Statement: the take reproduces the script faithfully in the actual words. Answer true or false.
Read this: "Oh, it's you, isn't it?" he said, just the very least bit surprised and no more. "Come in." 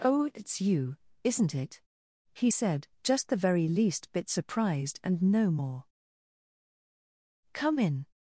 true